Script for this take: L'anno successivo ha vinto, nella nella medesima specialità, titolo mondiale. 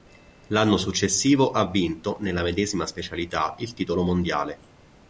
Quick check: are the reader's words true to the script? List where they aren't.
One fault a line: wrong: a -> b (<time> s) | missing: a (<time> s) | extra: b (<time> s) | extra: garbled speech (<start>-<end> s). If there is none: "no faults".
missing: nella (2.4 s)
extra: il (3.6 s)